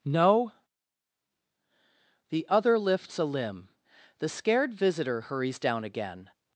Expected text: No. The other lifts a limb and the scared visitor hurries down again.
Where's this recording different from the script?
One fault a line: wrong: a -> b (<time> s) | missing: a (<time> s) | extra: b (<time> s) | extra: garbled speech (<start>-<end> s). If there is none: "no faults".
missing: and (3.7 s)